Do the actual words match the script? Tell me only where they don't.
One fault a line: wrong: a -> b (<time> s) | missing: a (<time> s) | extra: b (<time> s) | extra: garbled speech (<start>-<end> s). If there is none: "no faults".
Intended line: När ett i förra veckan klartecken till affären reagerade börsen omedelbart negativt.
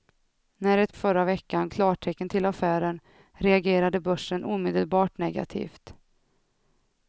no faults